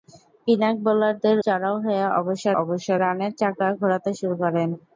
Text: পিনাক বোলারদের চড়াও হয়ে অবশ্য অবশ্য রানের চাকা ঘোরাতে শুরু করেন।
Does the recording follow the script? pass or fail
pass